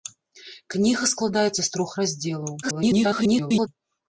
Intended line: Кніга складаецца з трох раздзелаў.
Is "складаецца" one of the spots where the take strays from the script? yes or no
no